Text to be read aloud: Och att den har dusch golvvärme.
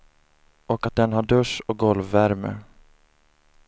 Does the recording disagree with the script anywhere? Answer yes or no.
yes